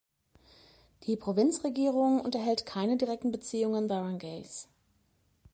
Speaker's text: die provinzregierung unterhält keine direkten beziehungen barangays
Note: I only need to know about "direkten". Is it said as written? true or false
true